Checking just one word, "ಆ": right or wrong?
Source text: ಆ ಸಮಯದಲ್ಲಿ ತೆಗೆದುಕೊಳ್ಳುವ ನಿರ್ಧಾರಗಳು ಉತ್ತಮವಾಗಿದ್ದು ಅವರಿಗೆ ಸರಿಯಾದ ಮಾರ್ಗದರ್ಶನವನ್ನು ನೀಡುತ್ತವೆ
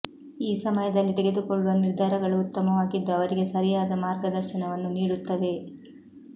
wrong